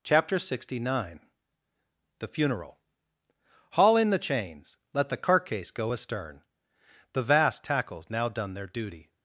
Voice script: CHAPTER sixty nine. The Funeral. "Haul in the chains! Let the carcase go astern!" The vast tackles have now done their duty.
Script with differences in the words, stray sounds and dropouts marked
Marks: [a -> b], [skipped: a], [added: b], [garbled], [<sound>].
CHAPTER sixty nine. The Funeral. "Haul in the chains! Let the carcase go astern!" The vast tackles [skipped: have] now done their duty.